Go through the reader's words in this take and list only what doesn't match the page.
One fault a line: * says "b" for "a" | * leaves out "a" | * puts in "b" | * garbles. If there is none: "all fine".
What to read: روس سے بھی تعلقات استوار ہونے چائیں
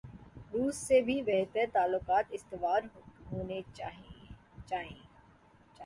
* puts in "بہتر"